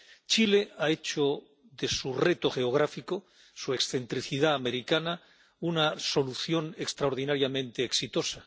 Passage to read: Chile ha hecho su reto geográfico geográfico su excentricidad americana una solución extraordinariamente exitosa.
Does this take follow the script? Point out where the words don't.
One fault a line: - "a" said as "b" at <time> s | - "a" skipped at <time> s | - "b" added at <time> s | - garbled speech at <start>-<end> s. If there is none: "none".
- "de" added at 1.7 s
- "geográfico" skipped at 3.3 s